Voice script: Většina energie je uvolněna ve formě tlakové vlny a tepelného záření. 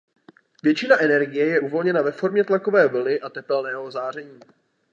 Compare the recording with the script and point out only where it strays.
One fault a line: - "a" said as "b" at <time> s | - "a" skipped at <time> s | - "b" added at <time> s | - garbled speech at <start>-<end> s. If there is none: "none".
none